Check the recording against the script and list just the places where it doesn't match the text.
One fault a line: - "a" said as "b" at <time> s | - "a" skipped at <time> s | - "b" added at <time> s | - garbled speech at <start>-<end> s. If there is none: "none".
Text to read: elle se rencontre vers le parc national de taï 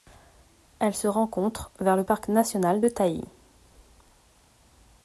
none